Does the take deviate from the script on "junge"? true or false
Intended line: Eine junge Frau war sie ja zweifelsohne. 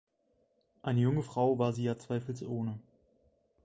false